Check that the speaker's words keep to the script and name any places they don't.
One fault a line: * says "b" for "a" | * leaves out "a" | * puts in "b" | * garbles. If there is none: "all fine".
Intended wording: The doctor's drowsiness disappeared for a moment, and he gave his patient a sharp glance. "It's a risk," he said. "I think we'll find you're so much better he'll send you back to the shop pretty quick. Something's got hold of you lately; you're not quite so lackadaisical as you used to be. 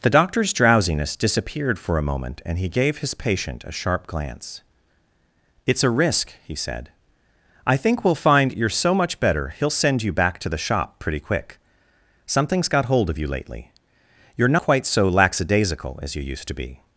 * leaves out "not"